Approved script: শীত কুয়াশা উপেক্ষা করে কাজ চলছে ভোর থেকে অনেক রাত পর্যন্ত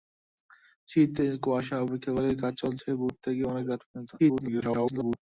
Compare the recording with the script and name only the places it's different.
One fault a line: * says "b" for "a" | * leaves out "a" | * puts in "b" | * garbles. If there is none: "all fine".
* garbles